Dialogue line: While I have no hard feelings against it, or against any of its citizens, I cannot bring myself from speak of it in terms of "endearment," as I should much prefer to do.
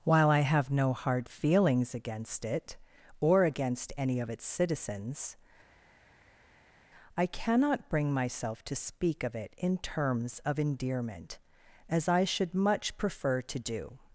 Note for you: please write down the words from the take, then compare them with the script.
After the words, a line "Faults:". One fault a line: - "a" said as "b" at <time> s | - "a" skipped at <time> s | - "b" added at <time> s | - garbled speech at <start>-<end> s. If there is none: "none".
While I have no hard feelings against it, or against any of its citizens, I cannot bring myself to speak of it in terms of "endearment," as I should much prefer to do.
Faults:
- "from" said as "to" at 8.6 s